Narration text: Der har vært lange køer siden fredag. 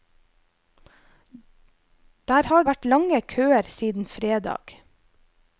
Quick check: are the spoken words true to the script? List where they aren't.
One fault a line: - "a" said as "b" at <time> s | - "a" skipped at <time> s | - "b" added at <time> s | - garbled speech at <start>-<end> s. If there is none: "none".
none